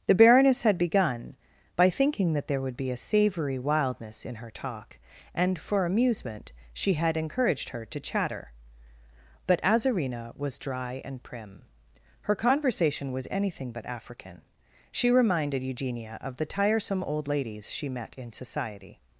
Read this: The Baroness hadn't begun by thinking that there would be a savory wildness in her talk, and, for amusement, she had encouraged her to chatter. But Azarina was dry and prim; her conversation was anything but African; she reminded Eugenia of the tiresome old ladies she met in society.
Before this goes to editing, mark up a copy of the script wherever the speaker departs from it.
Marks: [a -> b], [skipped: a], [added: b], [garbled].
The Baroness [hadn't -> had] begun by thinking that there would be a savory wildness in her talk, and, for amusement, she had encouraged her to chatter. But Azarina was dry and prim; her conversation was anything but African; she reminded Eugenia of the tiresome old ladies she met in society.